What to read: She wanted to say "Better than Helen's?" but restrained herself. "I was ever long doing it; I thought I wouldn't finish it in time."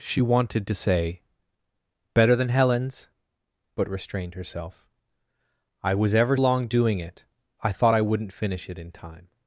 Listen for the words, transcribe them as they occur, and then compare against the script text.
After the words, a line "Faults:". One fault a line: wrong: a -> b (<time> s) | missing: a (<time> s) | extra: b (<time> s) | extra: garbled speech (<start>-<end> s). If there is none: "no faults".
She wanted to say "Better than Helen's?" but restrained herself. "I was ever long doing it; I thought I wouldn't finish it in time."
Faults:
no faults